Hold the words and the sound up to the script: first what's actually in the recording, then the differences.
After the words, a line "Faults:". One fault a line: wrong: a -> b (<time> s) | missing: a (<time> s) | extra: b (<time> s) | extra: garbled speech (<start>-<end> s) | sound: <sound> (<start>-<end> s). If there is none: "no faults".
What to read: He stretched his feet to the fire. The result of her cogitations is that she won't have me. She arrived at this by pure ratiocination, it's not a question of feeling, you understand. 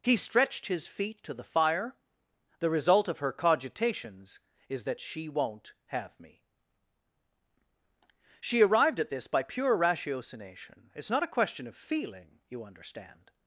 He stretched his feet to the fire. The result of her cogitations is that she won't have me. She arrived at this by pure ratiocination, it's not a question of feeling, you understand.
Faults:
no faults